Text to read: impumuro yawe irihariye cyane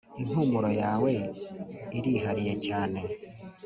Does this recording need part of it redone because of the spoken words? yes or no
no